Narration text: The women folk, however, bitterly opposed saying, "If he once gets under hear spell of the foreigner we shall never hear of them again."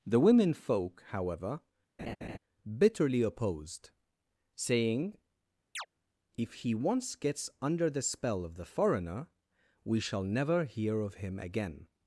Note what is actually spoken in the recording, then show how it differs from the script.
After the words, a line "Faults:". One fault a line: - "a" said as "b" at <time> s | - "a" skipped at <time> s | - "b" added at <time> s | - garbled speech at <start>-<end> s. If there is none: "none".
The women folk, however, bitterly opposed saying, "If he once gets under the spell of the foreigner we shall never hear of him again."
Faults:
- "hear" said as "the" at 7.9 s
- "them" said as "him" at 11.1 s